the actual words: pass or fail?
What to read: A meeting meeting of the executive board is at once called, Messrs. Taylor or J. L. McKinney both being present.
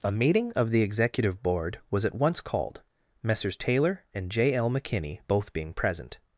fail